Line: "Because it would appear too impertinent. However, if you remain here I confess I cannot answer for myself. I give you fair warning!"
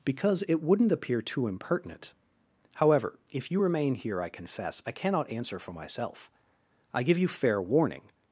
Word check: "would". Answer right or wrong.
wrong